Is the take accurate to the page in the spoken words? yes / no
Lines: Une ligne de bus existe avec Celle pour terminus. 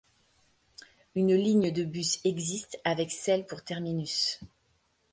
yes